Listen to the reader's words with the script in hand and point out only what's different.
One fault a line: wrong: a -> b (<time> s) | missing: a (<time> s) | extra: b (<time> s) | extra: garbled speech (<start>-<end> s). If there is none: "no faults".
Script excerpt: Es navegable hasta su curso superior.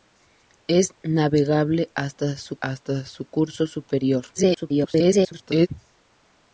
extra: hasta su (2.6 s)
extra: garbled speech (4.3-5.7 s)